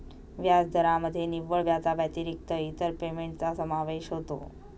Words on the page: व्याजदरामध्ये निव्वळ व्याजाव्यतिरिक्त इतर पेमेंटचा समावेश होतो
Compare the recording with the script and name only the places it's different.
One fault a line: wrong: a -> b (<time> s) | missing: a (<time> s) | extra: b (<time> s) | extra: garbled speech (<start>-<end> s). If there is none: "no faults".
no faults